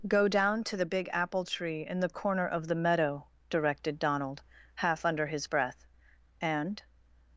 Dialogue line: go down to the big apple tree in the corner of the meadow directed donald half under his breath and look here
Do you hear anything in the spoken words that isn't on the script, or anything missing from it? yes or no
yes